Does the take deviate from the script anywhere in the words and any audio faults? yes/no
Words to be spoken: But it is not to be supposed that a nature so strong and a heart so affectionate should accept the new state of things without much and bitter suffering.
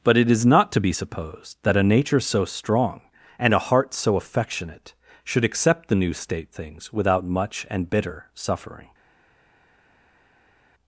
yes